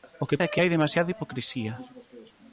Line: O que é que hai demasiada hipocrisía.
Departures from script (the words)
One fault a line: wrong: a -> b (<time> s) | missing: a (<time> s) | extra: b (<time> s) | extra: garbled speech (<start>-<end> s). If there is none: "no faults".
no faults